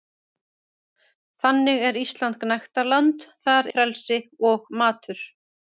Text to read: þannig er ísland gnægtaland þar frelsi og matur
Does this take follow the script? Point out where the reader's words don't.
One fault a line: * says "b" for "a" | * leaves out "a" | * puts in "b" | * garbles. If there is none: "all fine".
all fine